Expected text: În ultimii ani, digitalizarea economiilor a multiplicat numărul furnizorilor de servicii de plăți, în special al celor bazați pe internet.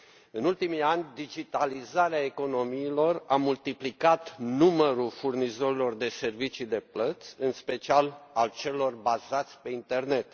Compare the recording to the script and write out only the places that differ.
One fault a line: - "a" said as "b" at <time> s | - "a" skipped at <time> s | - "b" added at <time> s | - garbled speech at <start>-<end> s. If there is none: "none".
none